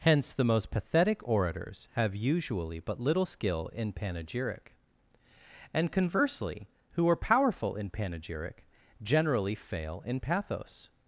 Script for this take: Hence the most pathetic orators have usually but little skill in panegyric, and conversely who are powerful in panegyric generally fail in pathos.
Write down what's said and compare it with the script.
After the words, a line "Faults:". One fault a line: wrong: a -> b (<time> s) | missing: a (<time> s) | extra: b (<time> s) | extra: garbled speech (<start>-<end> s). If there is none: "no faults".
Hence the most pathetic orators have usually but little skill in panegyric, and conversely who are powerful in panegyric generally fail in pathos.
Faults:
no faults